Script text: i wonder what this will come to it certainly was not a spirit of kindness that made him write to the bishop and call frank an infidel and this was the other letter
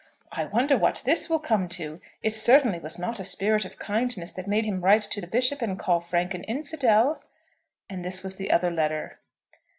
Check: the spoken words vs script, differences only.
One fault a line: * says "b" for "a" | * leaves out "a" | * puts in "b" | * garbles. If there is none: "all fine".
all fine